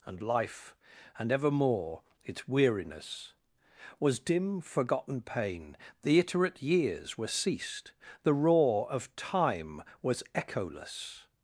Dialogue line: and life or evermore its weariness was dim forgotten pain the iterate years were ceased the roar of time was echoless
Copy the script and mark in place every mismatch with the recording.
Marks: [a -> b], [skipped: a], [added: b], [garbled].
and life [or -> and] evermore its weariness was dim forgotten pain the iterate years were ceased the roar of time was echoless